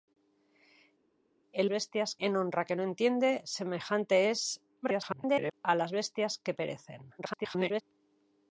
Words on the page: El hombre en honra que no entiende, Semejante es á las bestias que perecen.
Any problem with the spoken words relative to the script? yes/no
yes